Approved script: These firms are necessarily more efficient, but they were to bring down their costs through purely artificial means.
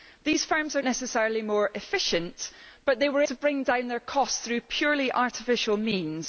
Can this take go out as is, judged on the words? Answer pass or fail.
pass